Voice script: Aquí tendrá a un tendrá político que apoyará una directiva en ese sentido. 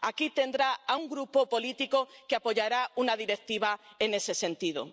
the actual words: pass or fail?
fail